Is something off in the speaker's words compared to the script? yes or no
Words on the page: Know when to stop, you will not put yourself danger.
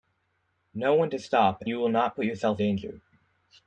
no